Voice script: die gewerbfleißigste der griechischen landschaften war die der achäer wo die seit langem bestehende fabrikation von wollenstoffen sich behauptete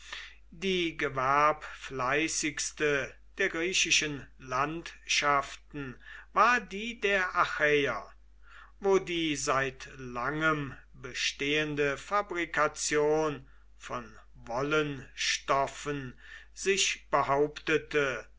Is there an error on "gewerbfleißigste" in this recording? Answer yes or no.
no